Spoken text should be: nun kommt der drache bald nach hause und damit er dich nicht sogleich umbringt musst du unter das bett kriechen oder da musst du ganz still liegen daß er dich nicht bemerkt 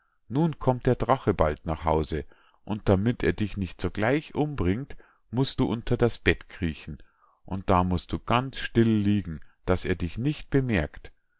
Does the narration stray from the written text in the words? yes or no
yes